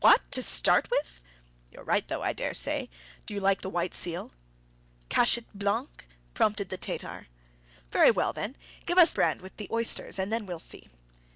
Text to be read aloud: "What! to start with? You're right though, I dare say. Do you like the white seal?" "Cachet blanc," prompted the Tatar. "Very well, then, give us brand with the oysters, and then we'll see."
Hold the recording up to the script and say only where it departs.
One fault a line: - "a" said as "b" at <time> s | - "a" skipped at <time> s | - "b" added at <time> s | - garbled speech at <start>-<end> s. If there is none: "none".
none